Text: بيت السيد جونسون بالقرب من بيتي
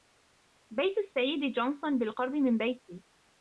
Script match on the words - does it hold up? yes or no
yes